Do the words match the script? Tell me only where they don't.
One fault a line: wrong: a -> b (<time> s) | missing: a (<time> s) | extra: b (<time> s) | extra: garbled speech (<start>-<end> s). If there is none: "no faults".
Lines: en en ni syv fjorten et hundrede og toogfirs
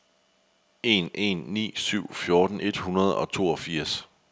no faults